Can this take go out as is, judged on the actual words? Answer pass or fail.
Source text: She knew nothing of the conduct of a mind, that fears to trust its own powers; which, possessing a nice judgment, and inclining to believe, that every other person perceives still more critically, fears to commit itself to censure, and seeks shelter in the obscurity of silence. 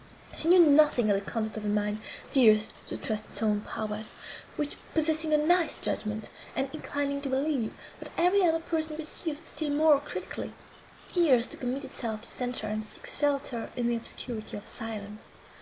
fail